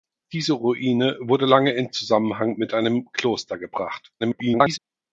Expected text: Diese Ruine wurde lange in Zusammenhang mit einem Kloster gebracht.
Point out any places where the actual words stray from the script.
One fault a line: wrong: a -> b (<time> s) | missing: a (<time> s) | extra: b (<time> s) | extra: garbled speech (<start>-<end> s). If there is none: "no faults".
extra: garbled speech (4.2-4.8 s)